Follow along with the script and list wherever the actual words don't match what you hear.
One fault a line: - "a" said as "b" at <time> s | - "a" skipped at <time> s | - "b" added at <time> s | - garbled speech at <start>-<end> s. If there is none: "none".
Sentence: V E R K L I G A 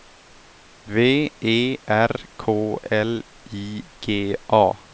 none